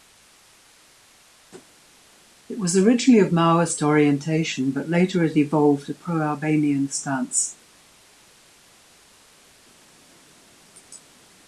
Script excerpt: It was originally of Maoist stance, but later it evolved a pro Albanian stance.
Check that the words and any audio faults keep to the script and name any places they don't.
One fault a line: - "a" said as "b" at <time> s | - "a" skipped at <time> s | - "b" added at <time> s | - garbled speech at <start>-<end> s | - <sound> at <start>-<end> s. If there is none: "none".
- "stance" said as "orientation" at 3.8 s